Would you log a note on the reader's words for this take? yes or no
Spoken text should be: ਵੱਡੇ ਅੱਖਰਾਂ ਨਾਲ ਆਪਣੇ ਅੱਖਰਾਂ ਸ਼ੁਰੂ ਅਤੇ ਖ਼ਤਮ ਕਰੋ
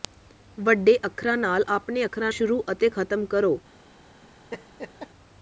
no